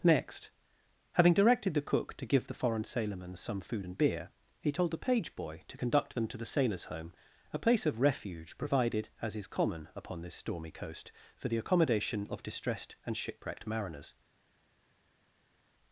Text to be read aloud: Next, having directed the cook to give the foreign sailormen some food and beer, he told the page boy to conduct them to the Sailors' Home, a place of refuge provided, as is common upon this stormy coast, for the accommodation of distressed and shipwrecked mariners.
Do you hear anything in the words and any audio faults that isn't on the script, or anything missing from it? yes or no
no